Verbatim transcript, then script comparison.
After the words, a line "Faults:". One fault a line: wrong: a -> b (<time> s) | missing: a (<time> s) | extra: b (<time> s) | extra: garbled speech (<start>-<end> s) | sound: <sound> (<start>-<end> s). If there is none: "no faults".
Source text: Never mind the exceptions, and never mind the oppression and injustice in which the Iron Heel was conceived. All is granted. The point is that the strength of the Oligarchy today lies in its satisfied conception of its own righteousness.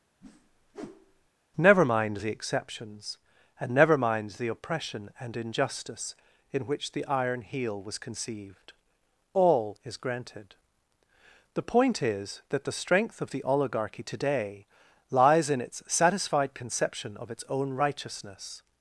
Never mind the exceptions, and never mind the oppression and injustice in which the Iron Heel was conceived. All is granted. The point is that the strength of the Oligarchy today lies in its satisfied conception of its own righteousness.
Faults:
sound: whoosh (0.2-1.3 s)